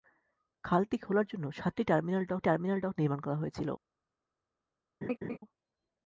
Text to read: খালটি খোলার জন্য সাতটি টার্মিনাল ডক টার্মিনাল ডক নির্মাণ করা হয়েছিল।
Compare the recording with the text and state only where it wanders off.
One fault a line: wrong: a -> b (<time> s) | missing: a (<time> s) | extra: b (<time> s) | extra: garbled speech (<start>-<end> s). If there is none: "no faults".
no faults